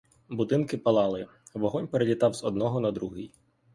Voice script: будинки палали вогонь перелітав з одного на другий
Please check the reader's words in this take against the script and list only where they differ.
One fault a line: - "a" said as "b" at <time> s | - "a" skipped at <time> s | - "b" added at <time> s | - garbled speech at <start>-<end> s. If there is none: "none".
none